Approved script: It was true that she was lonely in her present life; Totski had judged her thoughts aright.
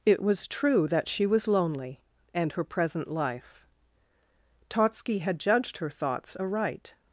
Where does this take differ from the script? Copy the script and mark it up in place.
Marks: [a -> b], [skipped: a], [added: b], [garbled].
It was true that she was lonely [in -> and] her present life; Totski had judged her thoughts aright.